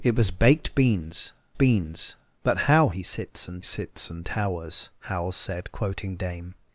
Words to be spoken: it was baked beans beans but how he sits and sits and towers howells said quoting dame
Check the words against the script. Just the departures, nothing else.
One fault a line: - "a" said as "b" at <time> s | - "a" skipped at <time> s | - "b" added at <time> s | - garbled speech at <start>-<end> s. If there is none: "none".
none